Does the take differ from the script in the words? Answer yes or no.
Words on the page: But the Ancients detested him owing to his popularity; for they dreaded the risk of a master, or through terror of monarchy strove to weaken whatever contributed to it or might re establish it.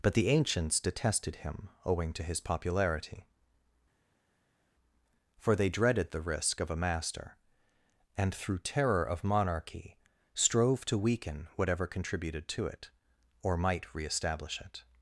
yes